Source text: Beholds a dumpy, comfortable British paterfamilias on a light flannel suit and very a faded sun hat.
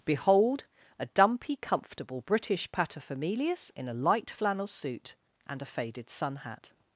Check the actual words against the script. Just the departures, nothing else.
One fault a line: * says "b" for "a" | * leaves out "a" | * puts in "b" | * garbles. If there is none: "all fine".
* says "Behold" for "Beholds"
* says "in" for "on"
* leaves out "very"